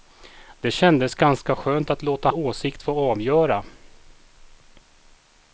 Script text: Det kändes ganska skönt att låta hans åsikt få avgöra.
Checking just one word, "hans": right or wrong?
wrong